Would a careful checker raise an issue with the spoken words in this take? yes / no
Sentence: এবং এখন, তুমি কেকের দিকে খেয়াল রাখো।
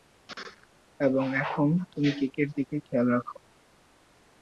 no